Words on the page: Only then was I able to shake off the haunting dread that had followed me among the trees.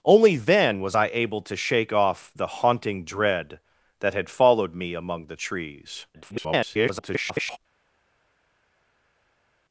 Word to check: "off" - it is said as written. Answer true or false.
true